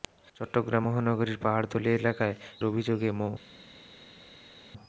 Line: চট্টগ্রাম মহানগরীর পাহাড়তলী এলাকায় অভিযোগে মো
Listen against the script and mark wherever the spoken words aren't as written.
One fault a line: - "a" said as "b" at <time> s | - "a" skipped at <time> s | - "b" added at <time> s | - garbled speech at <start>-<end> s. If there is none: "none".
none